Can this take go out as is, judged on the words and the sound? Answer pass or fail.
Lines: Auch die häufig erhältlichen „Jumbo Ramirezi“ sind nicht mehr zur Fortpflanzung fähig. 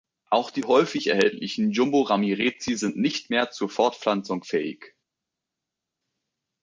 pass